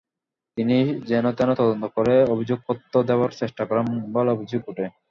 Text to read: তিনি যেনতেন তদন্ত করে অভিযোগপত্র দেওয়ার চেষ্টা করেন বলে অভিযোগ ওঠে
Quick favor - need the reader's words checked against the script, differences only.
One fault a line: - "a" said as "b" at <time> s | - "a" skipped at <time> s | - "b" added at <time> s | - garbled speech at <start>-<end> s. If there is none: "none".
none